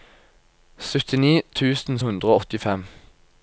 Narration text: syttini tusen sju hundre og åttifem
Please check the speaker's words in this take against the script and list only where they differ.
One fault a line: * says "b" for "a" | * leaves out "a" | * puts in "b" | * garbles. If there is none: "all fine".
* leaves out "sju"